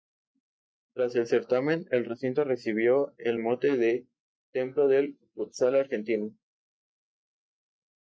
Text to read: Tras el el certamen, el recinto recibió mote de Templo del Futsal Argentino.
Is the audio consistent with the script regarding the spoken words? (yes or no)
no